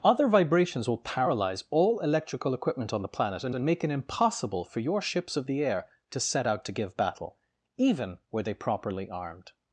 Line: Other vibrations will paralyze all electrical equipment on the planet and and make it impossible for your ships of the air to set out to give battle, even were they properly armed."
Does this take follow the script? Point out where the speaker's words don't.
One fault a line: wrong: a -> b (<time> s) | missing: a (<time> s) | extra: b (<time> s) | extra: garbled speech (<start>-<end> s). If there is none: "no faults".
no faults